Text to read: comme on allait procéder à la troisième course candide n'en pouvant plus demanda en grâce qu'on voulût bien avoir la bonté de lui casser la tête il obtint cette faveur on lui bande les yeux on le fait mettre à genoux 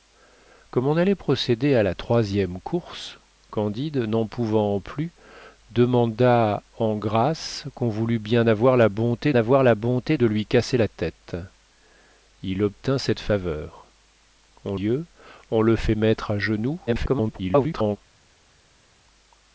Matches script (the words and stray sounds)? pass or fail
fail